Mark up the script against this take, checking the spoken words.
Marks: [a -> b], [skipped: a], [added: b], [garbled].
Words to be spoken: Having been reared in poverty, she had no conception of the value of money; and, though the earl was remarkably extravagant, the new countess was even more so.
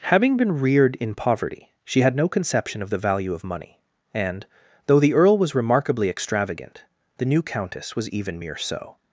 Having been reared in poverty, she had no conception of the value of money; and, though the earl was remarkably extravagant, the new countess was even [more -> mere] so.